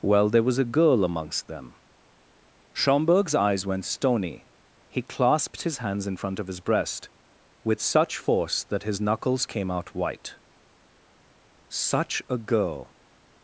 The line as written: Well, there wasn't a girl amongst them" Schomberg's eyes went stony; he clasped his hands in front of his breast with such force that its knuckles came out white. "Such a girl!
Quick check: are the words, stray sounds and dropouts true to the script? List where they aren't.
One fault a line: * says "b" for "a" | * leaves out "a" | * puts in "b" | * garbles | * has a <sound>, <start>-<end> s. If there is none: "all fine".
* says "was" for "wasn't"
* says "his" for "its"